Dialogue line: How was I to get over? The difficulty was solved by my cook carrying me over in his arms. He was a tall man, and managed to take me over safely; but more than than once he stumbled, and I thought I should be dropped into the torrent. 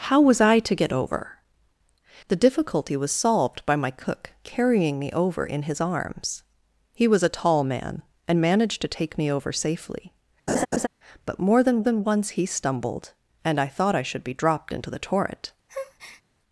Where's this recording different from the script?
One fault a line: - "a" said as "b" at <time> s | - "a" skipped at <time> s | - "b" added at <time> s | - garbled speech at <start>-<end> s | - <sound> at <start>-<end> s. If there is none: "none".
- laugh at 10.5-10.9 s
- breath at 15.7-16.2 s